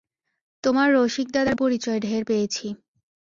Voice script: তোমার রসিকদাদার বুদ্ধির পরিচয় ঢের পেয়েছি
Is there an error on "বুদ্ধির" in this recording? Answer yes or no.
yes